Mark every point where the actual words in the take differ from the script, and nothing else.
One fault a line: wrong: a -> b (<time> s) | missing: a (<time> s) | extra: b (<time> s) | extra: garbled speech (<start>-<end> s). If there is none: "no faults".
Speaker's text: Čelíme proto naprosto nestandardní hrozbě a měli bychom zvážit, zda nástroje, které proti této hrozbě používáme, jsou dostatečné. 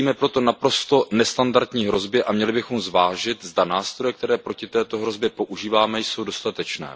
no faults